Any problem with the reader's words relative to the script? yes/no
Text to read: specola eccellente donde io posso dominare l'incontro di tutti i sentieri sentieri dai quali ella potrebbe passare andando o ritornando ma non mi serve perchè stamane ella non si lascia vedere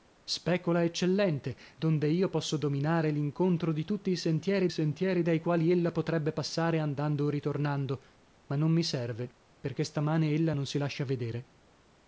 no